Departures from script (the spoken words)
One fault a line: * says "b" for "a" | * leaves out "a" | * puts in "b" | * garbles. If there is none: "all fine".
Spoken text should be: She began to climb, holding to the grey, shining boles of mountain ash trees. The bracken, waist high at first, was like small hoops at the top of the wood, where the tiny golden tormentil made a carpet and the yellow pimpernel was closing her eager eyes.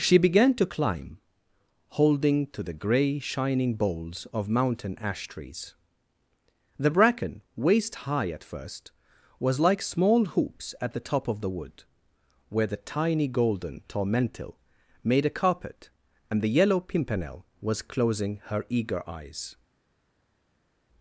all fine